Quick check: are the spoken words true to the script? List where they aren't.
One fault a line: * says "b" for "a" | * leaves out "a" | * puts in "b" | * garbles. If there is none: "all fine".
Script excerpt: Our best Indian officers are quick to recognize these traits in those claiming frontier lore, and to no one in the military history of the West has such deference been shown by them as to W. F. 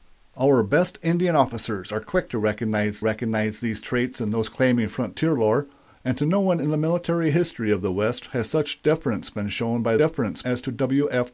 * puts in "recognize"
* says "deference" for "them"